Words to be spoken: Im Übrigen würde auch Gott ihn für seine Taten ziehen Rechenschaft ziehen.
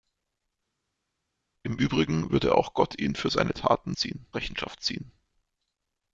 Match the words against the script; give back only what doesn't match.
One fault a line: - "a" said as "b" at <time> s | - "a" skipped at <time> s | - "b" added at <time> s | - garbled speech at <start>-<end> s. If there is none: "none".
none